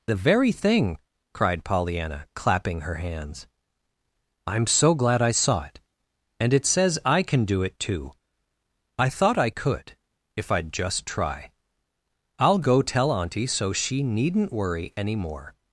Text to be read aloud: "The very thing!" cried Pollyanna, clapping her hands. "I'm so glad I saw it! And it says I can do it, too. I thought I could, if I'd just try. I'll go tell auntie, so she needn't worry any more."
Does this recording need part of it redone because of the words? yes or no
no